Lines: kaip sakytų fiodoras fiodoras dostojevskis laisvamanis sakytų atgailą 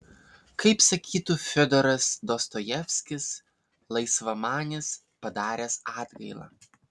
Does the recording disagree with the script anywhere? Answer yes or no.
yes